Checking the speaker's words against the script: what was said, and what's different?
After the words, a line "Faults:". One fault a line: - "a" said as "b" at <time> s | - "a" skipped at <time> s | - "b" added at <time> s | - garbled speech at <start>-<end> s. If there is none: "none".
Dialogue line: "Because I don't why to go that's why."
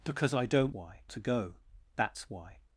"Because I don't why to go that's why."
Faults:
none